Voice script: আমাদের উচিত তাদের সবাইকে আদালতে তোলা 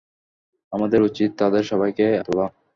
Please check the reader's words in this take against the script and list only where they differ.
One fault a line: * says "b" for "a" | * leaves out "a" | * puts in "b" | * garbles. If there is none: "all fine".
* leaves out "আদালতে"